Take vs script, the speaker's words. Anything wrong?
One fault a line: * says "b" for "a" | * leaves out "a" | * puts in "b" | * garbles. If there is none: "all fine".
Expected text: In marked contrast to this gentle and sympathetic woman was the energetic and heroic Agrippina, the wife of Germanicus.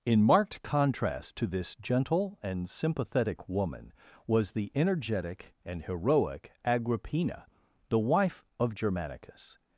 all fine